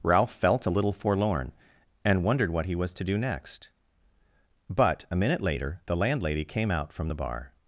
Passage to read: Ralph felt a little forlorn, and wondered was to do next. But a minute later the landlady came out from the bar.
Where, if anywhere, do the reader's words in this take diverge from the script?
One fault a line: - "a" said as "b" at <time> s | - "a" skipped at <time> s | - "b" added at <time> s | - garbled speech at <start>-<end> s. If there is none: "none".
- "what he" added at 2.5 s